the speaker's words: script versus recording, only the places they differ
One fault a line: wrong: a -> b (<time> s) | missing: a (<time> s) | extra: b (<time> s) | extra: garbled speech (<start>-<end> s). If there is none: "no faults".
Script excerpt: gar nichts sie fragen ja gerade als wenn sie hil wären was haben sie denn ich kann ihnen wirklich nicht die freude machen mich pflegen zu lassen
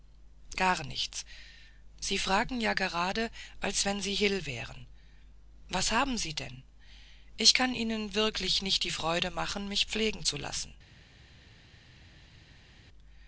no faults